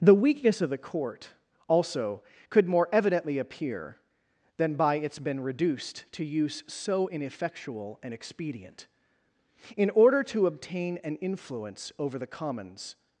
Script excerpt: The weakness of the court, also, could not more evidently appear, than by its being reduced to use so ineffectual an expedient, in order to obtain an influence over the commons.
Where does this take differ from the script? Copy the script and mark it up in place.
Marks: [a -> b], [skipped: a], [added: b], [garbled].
The weakness of the court, also, could [skipped: not] more evidently appear, than by its [being -> been] reduced to use so ineffectual an expedient, in order to obtain an influence over the commons.